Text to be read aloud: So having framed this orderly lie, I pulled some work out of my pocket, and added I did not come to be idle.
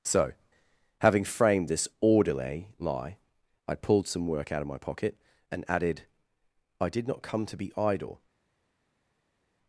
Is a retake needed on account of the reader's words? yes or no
no